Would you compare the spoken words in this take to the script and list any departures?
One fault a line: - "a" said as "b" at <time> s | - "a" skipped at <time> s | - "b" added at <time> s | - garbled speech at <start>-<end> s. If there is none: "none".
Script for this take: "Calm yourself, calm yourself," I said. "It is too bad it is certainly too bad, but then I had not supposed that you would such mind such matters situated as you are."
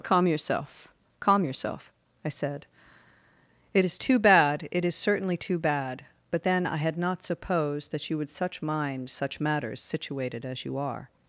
none